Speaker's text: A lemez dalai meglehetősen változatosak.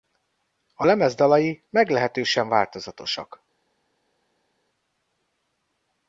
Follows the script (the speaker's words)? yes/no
yes